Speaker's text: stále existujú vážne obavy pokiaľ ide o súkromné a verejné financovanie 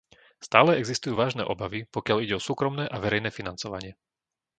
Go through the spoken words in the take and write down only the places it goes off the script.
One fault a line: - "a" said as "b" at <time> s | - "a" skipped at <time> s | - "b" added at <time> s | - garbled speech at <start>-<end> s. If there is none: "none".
none